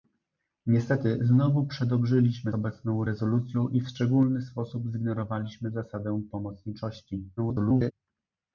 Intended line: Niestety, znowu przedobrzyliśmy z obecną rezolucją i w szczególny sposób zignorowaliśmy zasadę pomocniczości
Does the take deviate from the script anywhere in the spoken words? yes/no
yes